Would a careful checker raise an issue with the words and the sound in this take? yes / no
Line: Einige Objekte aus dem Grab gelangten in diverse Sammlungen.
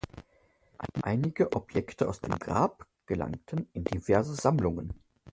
no